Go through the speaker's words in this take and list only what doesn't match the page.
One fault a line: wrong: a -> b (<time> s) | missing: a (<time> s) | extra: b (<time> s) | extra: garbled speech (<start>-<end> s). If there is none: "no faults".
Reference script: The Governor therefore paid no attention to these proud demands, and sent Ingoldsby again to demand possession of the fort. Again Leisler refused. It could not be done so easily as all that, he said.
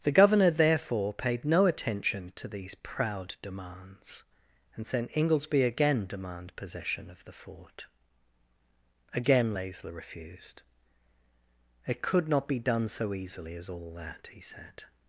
missing: to (6.1 s)